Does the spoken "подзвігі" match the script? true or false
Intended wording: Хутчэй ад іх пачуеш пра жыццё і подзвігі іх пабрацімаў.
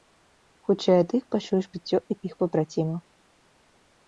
false